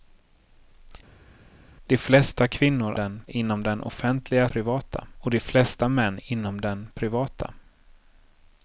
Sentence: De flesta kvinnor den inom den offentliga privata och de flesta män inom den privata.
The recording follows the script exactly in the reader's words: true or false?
true